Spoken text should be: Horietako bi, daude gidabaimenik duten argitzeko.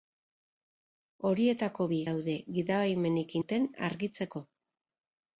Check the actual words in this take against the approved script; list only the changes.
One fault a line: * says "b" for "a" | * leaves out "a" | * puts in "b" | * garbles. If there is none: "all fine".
all fine